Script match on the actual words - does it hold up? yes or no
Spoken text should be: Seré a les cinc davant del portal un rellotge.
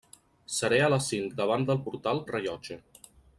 yes